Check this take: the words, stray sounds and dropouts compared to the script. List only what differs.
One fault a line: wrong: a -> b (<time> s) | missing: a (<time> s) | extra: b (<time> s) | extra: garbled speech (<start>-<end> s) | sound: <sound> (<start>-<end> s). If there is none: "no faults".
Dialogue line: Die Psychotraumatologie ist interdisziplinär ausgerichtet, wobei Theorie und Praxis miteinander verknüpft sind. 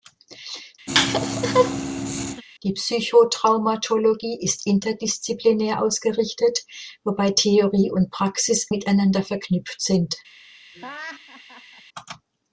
sound: laugh (0.9-2.4 s)
sound: laugh (10.7-11.8 s)